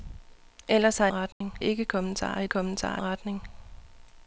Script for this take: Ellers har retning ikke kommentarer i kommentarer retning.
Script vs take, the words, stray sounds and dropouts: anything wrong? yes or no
yes